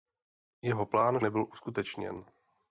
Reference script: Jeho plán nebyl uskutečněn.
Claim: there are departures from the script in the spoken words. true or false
false